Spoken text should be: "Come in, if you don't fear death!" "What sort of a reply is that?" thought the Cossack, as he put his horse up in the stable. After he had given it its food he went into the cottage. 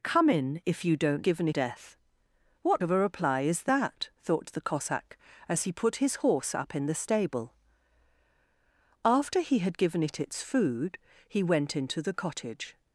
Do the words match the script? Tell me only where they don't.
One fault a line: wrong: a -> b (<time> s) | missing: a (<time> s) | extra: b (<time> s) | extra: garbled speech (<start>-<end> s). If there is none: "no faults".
wrong: fear -> given (1.2 s)
missing: sort (2.8 s)